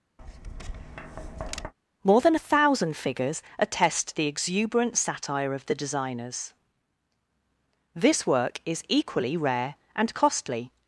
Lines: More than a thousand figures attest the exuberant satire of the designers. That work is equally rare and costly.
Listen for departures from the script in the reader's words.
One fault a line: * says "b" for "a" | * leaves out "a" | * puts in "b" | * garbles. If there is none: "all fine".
* says "This" for "That"